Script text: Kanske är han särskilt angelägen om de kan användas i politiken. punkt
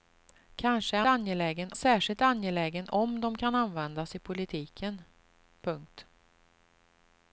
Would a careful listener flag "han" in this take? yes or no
yes